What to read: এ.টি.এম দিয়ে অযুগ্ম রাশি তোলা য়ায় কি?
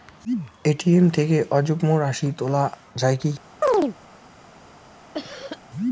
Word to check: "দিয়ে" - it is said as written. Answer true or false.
false